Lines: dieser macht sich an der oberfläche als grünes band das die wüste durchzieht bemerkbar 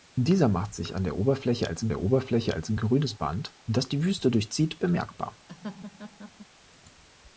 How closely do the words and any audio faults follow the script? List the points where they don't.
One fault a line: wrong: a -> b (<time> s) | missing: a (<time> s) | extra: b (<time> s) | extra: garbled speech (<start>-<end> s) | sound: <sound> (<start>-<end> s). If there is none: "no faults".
extra: der oberfläche als (1.9 s)
sound: laugh (5.5-6.5 s)